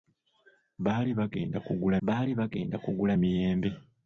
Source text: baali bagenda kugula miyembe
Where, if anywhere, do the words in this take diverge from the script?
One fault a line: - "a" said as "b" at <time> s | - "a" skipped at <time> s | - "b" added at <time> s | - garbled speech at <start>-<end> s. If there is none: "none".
- "baali bagenda kugula" added at 2.1 s